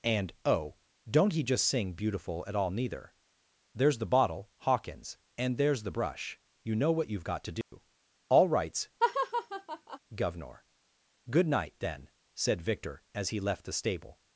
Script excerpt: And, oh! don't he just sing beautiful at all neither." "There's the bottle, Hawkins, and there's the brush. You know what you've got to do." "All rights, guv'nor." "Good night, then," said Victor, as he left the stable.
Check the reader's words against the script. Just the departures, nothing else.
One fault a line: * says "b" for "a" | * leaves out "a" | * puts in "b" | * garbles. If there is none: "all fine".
all fine